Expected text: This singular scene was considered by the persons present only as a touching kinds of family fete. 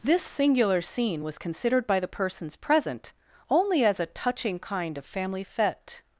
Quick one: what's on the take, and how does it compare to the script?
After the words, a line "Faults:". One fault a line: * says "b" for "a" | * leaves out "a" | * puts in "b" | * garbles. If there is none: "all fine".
This singular scene was considered by the persons present only as a touching kind of family fete.
Faults:
* says "kind" for "kinds"